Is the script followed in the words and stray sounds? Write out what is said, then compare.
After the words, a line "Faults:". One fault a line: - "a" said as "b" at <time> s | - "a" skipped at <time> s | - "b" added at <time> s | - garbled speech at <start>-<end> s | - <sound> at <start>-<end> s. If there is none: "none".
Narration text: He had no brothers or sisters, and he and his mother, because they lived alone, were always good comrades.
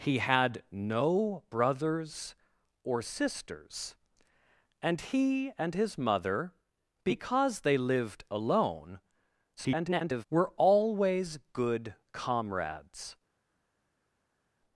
He had no brothers or sisters, and he and his mother, because they lived alone, [garbled] were always good comrades.
Faults:
- garbled speech at 9.6-10.2 s